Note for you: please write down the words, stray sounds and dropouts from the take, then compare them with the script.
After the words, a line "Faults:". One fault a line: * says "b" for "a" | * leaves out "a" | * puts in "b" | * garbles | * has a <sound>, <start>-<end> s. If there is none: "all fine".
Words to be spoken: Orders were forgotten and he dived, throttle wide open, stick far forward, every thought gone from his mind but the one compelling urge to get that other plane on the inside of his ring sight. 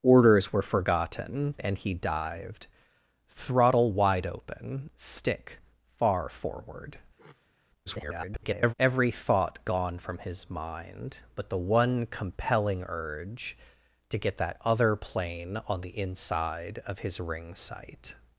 Orders were forgotten and he dived, throttle wide open, stick far forward, [garbled] every thought gone from his mind but the one compelling urge to get that other plane on the inside of his ring sight.
Faults:
* has a sniff, 7.2-7.6 s
* garbles